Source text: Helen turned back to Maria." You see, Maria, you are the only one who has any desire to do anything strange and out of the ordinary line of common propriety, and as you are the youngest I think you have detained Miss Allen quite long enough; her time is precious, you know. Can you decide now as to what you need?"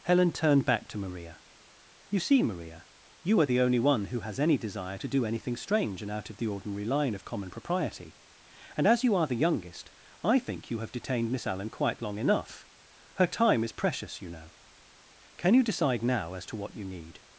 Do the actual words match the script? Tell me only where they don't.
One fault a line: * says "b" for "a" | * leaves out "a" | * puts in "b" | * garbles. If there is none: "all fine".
all fine